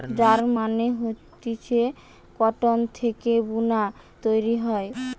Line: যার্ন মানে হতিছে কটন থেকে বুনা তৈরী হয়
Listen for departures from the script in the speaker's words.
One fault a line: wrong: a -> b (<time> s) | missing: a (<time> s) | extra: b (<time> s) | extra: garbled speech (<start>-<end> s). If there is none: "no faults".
no faults